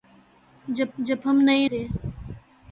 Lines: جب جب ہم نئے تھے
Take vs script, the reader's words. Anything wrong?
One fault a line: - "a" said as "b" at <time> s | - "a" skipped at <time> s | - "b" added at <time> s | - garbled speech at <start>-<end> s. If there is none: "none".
none